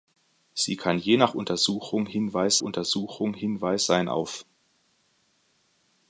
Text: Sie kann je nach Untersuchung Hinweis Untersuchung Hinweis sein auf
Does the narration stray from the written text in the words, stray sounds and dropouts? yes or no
no